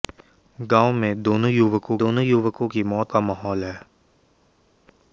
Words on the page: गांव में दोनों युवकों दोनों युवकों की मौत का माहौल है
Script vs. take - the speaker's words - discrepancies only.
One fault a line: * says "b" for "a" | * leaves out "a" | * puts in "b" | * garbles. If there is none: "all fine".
all fine